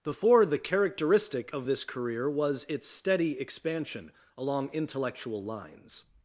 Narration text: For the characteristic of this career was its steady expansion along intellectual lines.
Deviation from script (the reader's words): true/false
true